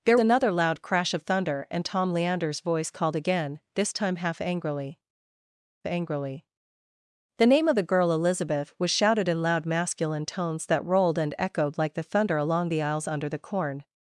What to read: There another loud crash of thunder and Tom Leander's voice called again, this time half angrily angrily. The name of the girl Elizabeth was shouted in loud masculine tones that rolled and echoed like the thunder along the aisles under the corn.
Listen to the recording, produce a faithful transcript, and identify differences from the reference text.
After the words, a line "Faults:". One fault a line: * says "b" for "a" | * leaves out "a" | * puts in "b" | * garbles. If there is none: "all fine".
There another loud crash of thunder and Tom Leander's voice called again, this time half angrily angrily. The name of the girl Elizabeth was shouted in loud masculine tones that rolled and echoed like the thunder along the aisles under the corn.
Faults:
all fine